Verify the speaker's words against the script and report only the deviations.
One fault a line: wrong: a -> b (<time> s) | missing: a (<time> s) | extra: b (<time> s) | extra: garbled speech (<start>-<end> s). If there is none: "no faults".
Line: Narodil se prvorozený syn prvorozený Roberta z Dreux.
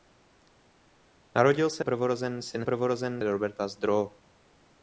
no faults